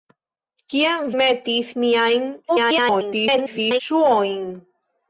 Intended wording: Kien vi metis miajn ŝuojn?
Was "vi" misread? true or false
true